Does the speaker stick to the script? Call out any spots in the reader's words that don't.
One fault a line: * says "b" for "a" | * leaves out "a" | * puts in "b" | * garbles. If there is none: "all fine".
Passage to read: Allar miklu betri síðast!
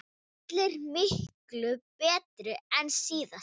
* puts in "en"